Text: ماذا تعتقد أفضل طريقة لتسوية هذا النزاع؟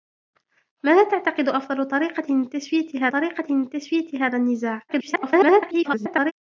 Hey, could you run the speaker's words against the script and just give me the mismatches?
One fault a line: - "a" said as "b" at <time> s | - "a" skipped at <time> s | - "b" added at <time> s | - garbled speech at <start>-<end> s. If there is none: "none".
- "طريقة لتسوية" added at 3.1 s
- garbled speech at 4.9-6.3 s